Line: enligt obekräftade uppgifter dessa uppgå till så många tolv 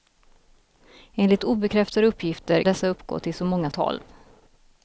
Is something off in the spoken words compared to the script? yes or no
no